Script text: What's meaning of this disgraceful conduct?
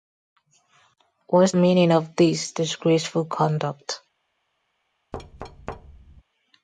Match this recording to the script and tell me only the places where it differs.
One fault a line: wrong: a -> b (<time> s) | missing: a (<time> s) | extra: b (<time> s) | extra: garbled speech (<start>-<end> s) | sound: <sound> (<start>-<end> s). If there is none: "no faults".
sound: thud (5.1-6.2 s)